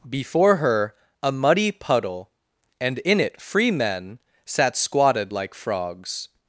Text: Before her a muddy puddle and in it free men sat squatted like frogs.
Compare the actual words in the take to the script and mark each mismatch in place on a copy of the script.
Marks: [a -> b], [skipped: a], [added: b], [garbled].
Before her a muddy puddle and in it free men sat squatted like frogs.